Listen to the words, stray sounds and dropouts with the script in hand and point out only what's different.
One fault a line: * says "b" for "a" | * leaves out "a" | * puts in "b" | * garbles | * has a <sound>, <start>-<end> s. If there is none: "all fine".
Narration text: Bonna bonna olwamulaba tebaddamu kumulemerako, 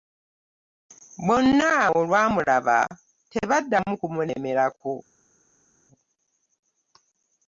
* leaves out "bonna"